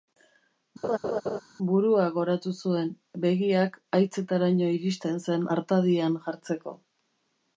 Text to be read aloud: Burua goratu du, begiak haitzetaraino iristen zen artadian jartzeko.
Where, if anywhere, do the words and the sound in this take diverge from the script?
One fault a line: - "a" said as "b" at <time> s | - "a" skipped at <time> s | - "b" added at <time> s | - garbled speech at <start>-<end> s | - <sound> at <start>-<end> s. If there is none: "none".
- laugh at 0.8-1.4 s
- "du" said as "zuen" at 2.6 s